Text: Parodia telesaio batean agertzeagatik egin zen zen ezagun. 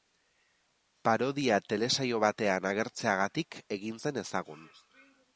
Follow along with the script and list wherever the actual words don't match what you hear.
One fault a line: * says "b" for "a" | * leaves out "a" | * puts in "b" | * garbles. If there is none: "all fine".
* leaves out "zen"